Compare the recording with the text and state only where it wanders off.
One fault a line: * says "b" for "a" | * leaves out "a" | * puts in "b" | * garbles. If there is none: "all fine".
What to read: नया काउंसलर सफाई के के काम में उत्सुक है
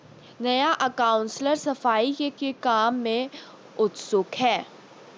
all fine